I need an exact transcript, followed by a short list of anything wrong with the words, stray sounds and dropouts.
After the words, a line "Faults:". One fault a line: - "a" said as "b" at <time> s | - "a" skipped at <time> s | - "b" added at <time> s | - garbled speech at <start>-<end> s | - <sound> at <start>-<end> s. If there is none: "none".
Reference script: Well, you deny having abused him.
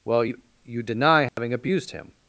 Well, you you deny having abused him.
Faults:
- "you" added at 0.6 s
- dropout at 1.3-1.4 s